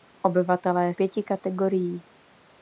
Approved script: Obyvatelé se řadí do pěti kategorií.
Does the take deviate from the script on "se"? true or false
true